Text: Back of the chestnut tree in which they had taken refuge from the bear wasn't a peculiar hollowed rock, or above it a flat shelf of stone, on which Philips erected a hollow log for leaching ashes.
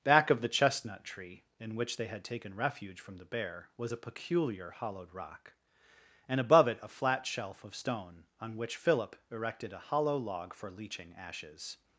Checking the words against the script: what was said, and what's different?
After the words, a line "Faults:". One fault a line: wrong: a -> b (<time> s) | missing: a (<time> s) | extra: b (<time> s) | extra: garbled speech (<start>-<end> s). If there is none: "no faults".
Back of the chestnut tree in which they had taken refuge from the bear was a peculiar hollowed rock, and above it a flat shelf of stone, on which Philip erected a hollow log for leaching ashes.
Faults:
wrong: wasn't -> was (3.8 s)
wrong: or -> and (6.3 s)
wrong: Philips -> Philip (8.8 s)